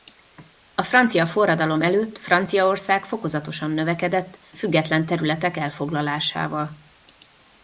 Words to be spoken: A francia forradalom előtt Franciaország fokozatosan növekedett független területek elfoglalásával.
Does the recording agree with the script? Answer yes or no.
yes